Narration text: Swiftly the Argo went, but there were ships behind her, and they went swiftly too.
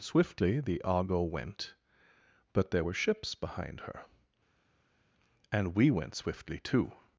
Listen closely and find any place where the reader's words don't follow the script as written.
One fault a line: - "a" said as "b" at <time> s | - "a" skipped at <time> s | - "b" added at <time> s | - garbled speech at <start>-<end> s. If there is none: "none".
- "they" said as "we" at 5.8 s